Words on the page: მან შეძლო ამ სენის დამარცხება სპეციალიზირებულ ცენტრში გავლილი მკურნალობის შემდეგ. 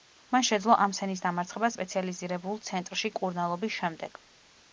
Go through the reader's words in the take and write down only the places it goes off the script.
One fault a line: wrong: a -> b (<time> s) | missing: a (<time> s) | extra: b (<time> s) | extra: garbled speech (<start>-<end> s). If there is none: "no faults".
missing: გავლილი (3.1 s)